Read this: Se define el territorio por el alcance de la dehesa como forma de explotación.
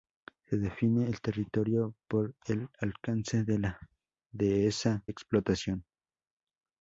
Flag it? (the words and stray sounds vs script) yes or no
yes